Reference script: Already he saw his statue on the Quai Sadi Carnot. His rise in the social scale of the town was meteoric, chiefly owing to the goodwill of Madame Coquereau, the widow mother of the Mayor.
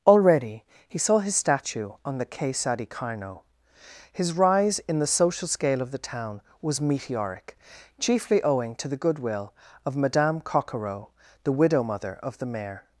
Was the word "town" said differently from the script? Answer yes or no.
no